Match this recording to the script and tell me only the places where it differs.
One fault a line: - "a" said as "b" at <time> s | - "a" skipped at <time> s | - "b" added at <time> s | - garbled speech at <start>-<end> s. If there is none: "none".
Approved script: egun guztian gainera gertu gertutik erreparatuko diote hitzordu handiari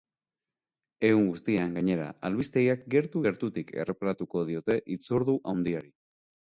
- "albistegiak" added at 2.3 s